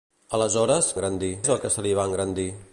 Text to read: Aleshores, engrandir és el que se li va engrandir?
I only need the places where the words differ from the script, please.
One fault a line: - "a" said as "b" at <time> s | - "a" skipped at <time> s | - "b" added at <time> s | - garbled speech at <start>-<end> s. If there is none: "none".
none